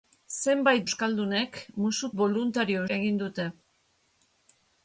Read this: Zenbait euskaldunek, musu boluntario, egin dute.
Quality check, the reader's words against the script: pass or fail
pass